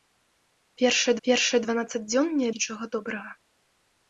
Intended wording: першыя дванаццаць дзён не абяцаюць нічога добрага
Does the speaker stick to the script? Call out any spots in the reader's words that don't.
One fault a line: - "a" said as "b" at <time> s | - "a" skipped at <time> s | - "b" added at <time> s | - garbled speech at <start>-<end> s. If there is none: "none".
- "першыя" added at 1.3 s
- "абяцаюць" skipped at 2.5 s